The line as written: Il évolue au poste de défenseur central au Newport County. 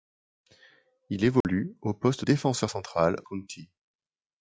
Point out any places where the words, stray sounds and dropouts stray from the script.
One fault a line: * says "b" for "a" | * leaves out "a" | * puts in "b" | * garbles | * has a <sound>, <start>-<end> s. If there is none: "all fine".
* has a dropout, 1.4-1.4 s
* leaves out "de"
* leaves out "au Newport"